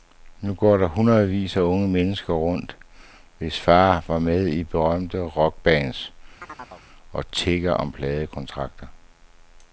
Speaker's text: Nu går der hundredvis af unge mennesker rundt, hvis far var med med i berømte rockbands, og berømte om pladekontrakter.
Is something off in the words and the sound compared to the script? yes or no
yes